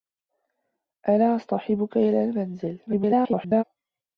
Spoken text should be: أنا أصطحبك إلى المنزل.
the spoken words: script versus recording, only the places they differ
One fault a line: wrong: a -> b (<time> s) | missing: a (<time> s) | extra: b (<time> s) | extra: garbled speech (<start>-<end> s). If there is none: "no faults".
extra: garbled speech (2.9-3.6 s)